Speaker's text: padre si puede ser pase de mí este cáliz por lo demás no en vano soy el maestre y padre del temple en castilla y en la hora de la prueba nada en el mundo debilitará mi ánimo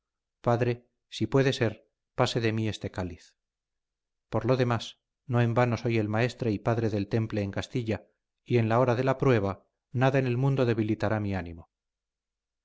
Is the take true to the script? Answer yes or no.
yes